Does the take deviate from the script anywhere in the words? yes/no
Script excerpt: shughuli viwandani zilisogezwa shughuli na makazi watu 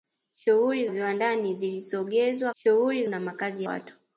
no